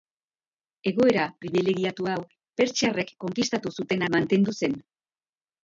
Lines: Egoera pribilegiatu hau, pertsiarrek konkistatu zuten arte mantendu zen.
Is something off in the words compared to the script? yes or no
yes